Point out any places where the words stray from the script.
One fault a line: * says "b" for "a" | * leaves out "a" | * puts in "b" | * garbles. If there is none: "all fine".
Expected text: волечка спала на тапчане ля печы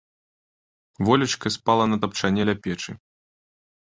all fine